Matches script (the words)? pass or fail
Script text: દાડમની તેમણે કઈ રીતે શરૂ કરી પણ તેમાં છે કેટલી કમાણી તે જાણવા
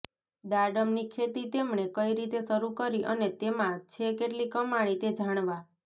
fail